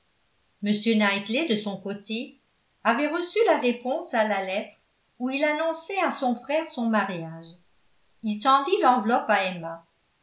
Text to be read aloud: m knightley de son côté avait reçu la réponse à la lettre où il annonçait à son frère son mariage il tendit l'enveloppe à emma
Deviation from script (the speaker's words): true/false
false